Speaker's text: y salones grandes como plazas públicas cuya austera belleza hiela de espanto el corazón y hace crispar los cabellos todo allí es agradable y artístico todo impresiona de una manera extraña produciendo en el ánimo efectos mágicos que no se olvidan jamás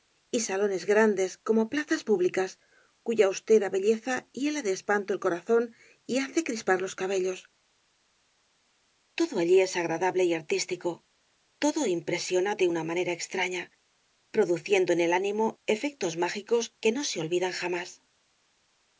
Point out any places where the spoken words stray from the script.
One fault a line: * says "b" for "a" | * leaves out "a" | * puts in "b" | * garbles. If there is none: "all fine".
all fine